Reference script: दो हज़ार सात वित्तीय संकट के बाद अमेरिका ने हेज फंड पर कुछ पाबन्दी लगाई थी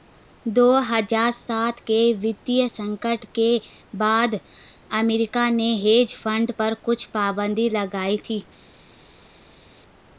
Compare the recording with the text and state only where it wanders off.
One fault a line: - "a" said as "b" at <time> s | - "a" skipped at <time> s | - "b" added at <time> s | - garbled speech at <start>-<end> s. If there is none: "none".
- "के" added at 1.8 s